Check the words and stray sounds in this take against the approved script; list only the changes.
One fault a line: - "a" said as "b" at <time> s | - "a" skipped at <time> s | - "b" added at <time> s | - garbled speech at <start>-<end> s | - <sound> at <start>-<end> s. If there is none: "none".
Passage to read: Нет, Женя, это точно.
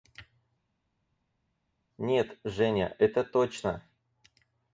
none